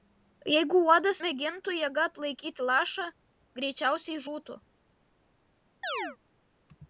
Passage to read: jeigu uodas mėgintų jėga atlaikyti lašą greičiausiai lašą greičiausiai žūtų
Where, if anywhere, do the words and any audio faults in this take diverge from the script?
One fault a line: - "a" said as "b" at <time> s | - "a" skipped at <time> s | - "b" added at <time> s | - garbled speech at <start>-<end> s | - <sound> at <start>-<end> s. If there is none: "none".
- "lašą greičiausiai" skipped at 4.2 s
- chirp at 5.8-6.2 s